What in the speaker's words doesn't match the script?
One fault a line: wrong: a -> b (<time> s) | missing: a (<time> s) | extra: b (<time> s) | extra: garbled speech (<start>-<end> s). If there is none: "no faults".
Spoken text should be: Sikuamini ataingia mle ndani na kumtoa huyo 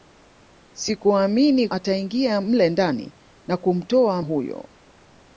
no faults